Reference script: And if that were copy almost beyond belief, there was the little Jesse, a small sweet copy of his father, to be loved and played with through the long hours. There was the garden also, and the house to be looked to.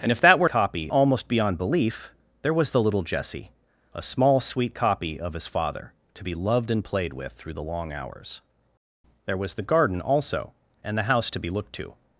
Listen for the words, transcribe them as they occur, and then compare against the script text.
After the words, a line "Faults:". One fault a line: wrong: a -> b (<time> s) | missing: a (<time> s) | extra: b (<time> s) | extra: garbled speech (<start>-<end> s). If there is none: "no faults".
And if that were copy almost beyond belief, there was the little Jesse, a small sweet copy of his father, to be loved and played with through the long hours. There was the garden also, and the house to be looked to.
Faults:
no faults